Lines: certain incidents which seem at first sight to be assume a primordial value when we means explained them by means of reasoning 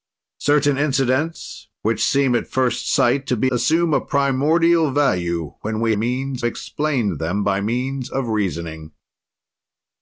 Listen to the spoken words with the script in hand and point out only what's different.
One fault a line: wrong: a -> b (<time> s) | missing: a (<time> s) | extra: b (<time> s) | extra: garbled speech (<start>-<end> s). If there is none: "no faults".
no faults